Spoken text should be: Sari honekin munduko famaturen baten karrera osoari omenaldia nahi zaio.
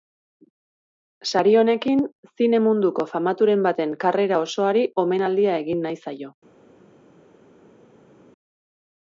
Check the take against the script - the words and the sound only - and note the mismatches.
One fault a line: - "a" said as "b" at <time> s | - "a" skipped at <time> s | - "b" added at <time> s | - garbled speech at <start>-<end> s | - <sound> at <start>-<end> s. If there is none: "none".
- "zine" added at 2.3 s
- "egin" added at 5.7 s